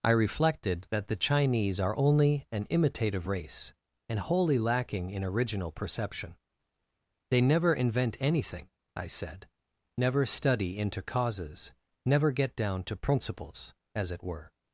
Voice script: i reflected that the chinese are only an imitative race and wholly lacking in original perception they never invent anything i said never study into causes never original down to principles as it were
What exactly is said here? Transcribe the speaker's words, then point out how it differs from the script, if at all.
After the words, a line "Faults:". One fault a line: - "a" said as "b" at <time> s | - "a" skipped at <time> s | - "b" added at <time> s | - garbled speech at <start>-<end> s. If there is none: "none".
i reflected that the chinese are only an imitative race and wholly lacking in original perception they never invent anything i said never study into causes never get down to principles as it were
Faults:
- "original" said as "get" at 12.3 s